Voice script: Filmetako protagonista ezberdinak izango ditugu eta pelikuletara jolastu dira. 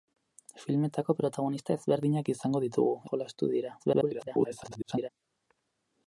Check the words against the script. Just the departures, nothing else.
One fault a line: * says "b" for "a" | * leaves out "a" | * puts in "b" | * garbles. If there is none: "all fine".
* leaves out "eta pelikuletara"
* garbles